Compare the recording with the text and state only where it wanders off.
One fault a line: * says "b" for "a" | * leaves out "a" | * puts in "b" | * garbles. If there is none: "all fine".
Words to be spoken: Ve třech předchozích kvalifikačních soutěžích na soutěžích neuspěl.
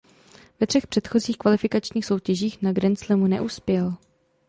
* says "grandslamu" for "soutěžích"